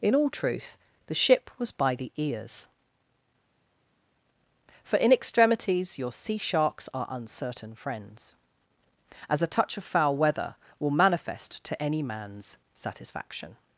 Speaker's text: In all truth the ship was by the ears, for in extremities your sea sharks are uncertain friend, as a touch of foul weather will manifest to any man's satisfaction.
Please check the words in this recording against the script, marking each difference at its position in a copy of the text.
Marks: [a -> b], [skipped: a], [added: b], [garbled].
In all truth the ship was by the ears, for in extremities your sea sharks are uncertain [friend, -> friends] as a touch of foul weather will manifest to any man's satisfaction.